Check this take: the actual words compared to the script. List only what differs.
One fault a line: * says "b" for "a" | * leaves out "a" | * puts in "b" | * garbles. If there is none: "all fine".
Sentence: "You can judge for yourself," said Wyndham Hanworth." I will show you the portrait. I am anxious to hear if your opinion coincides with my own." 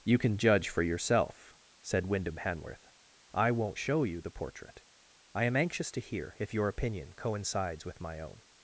* says "won't" for "will"